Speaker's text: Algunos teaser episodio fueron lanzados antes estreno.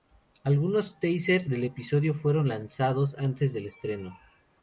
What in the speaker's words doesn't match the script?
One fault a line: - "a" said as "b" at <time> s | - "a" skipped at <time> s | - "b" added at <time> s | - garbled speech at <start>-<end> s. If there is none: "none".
- "del" added at 1.5 s
- "del" added at 3.5 s